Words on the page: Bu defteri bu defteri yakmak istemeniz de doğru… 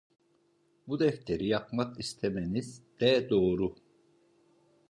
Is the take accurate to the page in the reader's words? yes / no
no